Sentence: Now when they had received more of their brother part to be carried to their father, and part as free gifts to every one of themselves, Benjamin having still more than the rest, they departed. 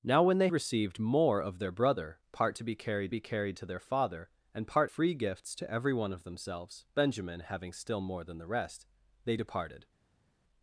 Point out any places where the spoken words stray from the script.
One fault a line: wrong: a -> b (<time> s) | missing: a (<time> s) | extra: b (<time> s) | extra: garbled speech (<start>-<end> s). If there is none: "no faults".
missing: had (0.5 s)
extra: be carried (3.1 s)
missing: as (4.9 s)